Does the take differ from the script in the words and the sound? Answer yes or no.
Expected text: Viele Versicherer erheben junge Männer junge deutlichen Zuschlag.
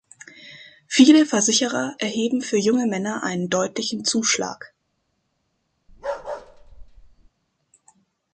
yes